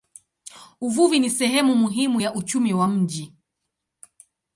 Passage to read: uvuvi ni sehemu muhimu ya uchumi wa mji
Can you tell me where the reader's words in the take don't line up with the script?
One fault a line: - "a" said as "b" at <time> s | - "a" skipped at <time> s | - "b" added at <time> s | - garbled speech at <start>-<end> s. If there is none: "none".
none